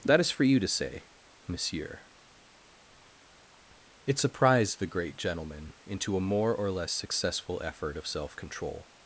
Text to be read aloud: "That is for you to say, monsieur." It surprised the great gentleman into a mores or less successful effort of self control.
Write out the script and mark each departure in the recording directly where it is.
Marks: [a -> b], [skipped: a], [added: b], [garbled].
"That is for you to say, monsieur." It surprised the great gentleman into a [mores -> more] or less successful effort of self control.